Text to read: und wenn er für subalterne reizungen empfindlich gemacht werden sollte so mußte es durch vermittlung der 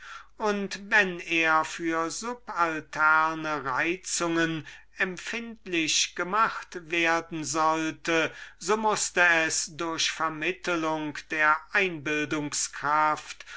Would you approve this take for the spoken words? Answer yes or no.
yes